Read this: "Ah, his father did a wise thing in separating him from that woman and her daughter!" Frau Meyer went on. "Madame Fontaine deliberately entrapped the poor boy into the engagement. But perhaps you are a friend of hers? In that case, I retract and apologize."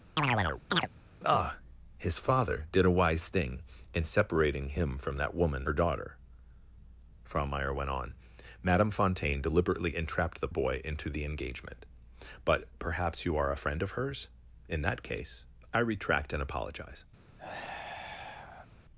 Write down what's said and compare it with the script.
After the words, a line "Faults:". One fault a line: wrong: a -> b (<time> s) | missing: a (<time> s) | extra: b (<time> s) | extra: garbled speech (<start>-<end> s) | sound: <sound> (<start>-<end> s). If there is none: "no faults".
"Ah, his father did a wise thing in separating him from that woman her daughter!" Frau Meyer went on. "Madame Fontaine deliberately entrapped the boy into the engagement. But perhaps you are a friend of hers? In that case, I retract and apologize."
Faults:
sound: chirp (0.2-0.9 s)
missing: and (5.7 s)
missing: poor (10.5 s)
sound: sigh (17.4-18.7 s)